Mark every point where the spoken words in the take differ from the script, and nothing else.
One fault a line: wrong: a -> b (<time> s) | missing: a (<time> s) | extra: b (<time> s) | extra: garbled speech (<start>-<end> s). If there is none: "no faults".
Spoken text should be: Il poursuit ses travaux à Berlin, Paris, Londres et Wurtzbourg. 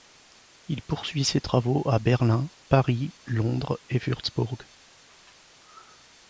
no faults